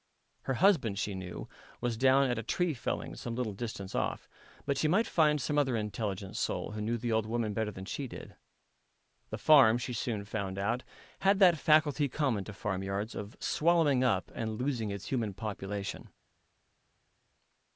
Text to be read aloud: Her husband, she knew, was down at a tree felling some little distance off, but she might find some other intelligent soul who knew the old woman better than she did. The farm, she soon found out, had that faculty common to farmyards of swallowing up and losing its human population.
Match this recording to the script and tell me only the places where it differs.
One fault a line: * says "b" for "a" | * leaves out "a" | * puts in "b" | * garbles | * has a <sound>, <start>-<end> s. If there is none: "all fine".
all fine